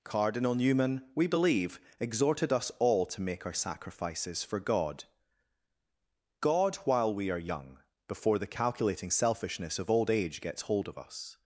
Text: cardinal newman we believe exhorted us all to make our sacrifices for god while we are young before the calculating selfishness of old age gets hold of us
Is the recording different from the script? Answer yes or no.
yes